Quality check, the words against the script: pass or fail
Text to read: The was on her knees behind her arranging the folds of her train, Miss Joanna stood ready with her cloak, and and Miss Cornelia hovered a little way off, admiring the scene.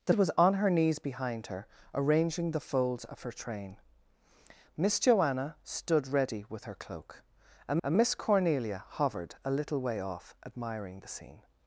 pass